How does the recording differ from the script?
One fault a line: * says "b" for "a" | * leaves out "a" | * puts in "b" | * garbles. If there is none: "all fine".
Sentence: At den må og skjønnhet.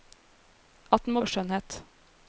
all fine